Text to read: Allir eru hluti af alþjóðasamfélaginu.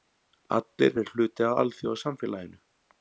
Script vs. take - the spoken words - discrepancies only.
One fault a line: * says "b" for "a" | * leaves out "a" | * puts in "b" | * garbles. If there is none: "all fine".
all fine